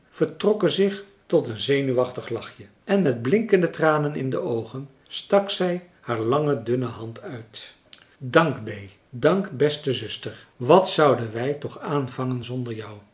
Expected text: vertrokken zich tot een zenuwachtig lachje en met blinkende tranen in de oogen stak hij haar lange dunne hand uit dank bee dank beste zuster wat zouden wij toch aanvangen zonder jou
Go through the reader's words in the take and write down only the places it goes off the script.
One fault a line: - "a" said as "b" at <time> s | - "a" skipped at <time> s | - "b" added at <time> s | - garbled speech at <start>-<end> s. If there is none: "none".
- "hij" said as "zij" at 5.5 s